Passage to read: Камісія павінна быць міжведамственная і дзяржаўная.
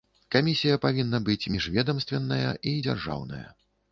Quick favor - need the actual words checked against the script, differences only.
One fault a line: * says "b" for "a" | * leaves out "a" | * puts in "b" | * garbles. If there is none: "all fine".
all fine